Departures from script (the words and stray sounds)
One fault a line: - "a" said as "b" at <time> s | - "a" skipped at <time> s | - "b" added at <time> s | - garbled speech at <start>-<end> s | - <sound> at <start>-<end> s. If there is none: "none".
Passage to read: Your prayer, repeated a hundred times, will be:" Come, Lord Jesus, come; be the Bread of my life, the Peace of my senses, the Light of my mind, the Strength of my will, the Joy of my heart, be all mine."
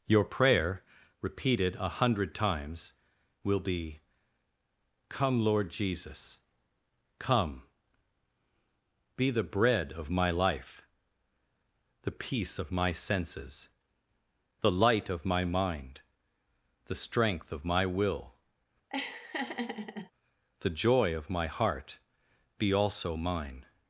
- laugh at 18.9-20.1 s
- "all" said as "also" at 22.7 s